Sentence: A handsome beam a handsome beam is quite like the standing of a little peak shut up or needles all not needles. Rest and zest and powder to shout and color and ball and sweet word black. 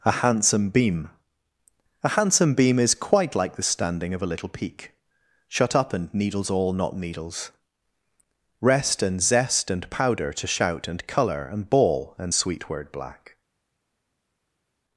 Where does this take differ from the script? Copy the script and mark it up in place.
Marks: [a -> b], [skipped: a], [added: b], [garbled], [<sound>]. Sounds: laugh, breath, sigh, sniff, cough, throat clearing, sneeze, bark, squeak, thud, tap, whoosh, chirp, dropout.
A handsome beam a handsome beam is quite like the standing of a little peak shut up [or -> and] needles all not needles. Rest and zest and powder to shout and color and ball and sweet word black.